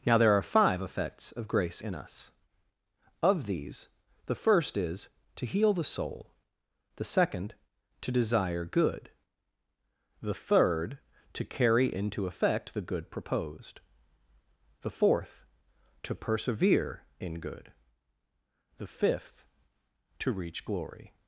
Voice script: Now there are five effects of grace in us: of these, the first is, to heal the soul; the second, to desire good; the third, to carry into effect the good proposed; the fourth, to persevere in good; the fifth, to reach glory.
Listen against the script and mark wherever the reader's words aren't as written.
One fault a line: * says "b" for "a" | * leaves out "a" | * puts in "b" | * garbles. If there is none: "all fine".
all fine